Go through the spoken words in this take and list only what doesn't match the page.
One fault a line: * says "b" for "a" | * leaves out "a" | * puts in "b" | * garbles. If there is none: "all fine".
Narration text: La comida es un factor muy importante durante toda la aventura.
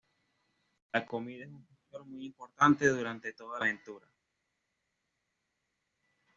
* leaves out "la"